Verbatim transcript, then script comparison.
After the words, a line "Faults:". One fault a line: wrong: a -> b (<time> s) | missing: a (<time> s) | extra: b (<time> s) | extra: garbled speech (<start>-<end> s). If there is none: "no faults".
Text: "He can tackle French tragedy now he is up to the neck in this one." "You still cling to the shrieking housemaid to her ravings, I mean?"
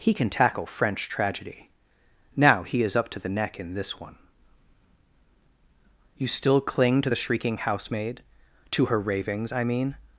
"He can tackle French tragedy now he is up to the neck in this one." "You still cling to the shrieking housemaid to her ravings, I mean?"
Faults:
no faults